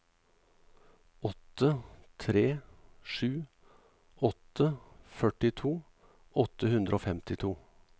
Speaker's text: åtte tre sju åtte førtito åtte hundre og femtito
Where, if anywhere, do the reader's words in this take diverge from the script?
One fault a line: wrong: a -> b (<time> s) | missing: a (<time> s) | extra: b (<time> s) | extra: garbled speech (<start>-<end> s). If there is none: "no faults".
no faults